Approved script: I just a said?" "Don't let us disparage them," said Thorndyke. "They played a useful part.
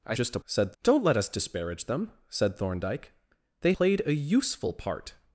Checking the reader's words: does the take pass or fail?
pass